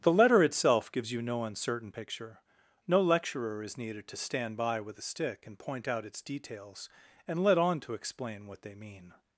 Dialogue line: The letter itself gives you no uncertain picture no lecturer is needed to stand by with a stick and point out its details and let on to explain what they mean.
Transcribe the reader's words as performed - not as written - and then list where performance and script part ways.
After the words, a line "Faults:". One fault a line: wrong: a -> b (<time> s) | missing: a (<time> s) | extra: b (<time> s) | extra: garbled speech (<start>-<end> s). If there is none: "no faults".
The letter itself gives you no uncertain picture no lecturer is needed to stand by with a stick and point out its details and let on to explain what they mean.
Faults:
no faults